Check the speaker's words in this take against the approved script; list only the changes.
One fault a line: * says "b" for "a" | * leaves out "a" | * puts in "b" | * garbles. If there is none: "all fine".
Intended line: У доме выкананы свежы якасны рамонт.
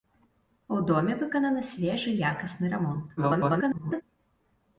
* garbles